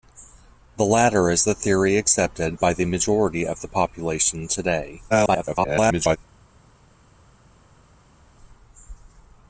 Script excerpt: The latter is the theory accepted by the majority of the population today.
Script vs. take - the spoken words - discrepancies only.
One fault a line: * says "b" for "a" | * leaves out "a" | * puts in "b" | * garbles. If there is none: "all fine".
* garbles